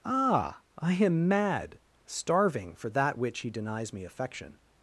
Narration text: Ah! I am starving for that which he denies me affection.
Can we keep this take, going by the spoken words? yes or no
no